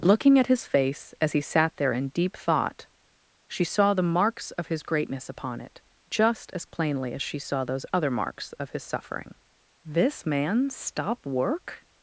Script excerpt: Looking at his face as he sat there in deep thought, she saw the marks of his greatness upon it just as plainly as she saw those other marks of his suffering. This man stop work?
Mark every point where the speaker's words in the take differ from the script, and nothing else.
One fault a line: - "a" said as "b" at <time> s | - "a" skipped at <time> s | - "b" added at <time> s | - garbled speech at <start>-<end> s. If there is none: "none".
none